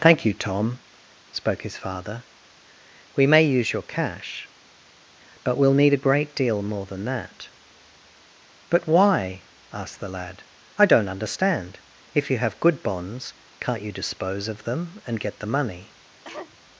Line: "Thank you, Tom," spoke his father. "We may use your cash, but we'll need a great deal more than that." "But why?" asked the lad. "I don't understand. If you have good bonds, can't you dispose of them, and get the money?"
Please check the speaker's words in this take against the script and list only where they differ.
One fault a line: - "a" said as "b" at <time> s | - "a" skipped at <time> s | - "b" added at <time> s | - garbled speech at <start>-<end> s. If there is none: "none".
none